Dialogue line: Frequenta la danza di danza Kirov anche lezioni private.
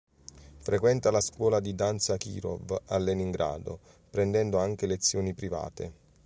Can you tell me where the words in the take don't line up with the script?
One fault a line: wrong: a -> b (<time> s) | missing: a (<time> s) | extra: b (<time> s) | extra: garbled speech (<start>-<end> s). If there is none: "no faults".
wrong: danza -> scuola (1.2 s)
extra: a Leningrado prendendo (2.9 s)